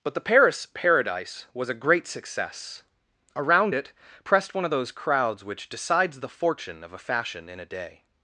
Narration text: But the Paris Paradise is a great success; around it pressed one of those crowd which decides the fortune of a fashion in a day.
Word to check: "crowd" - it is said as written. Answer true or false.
false